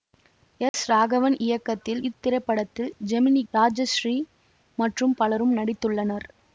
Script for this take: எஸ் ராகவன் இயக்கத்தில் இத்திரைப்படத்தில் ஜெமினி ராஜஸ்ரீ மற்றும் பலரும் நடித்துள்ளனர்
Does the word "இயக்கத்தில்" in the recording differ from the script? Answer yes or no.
no